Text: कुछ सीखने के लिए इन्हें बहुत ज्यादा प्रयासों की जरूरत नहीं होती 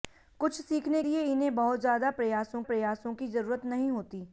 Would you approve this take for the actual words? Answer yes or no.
no